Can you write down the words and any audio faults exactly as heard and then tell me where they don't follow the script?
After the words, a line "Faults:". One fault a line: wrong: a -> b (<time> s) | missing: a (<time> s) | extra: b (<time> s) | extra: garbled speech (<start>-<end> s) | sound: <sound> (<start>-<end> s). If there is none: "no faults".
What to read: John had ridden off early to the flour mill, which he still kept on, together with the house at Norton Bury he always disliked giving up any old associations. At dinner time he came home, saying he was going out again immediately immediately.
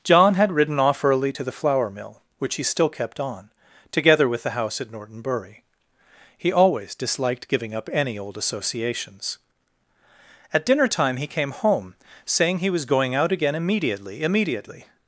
John had ridden off early to the flour mill, which he still kept on, together with the house at Norton Bury he always disliked giving up any old associations. At dinner time he came home, saying he was going out again immediately immediately.
Faults:
no faults